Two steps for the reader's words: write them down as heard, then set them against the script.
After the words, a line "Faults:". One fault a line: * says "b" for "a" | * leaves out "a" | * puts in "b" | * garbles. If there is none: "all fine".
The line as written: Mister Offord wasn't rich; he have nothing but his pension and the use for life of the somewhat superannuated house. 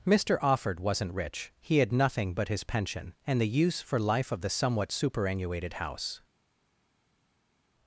Mister Offord wasn't rich; he had nothing but his pension and the use for life of the somewhat superannuated house.
Faults:
* says "had" for "have"